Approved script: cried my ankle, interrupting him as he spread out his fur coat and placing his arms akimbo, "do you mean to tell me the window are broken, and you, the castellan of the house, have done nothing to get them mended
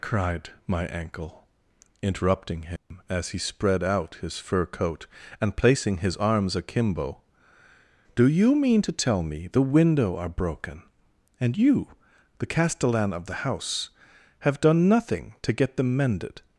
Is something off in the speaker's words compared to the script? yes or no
no